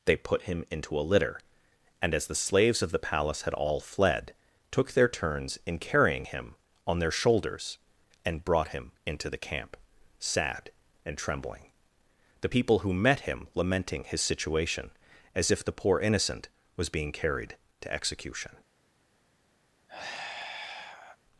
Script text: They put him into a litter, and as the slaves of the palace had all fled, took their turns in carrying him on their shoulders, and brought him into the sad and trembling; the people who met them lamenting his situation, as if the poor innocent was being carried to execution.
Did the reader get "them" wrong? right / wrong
wrong